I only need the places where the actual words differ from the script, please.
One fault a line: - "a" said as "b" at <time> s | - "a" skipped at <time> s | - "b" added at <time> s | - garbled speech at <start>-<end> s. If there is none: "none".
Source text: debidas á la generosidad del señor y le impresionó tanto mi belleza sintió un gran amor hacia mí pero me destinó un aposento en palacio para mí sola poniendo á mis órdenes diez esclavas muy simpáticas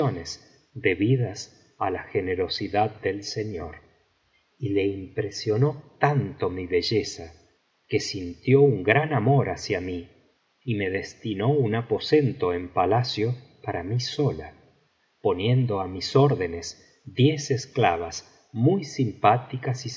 - "que" added at 7.9 s
- "pero" said as "y" at 10.6 s